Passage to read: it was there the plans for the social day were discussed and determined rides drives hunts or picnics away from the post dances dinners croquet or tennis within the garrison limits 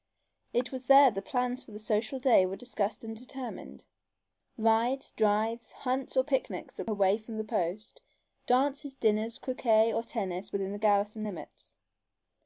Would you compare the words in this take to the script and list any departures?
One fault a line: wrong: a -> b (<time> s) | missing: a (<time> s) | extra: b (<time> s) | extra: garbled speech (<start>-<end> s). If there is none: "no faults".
no faults